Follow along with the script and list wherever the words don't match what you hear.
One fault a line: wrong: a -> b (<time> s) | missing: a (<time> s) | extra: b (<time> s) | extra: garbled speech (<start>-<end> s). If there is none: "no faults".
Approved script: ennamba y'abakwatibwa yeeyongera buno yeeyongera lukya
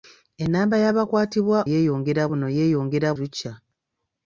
no faults